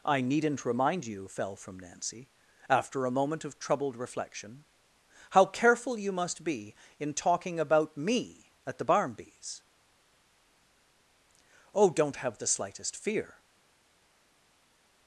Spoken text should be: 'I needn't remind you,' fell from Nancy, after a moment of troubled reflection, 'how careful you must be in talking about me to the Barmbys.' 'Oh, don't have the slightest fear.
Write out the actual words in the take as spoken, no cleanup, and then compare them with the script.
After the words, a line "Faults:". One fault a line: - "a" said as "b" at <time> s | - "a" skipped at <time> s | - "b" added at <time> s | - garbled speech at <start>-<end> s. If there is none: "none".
'I needn't remind you,' fell from Nancy, after a moment of troubled reflection, 'how careful you must be in talking about me at the Barmbys.' 'Oh, don't have the slightest fear.
Faults:
- "to" said as "at" at 8.7 s